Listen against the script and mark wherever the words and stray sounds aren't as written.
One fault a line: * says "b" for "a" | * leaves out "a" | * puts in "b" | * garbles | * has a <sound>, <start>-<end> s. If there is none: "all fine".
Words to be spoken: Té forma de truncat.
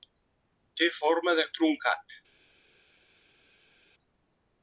all fine